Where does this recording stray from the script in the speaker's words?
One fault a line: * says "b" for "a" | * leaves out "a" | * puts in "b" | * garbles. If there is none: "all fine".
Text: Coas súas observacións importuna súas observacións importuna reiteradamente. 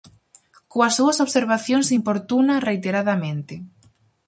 * leaves out "súas observacións importuna"